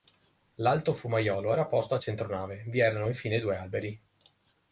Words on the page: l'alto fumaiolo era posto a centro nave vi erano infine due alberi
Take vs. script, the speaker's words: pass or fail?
pass